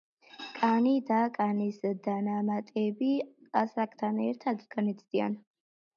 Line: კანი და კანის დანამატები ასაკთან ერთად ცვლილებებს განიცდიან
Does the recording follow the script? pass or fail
fail